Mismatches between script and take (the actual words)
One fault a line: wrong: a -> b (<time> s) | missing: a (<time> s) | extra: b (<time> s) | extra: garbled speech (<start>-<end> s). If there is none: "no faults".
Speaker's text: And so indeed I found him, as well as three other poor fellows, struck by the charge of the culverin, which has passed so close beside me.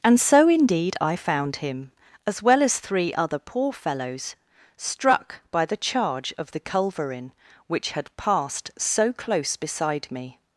wrong: has -> had (7.9 s)